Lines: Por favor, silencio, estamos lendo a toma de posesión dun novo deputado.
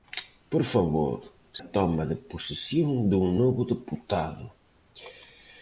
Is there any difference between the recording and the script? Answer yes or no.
yes